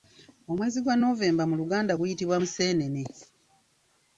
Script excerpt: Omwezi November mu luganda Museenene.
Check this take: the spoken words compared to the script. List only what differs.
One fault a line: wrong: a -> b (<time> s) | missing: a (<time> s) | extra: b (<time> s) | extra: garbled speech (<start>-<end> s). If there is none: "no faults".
extra: gwa (0.8 s)
extra: guyitibwa (2.0 s)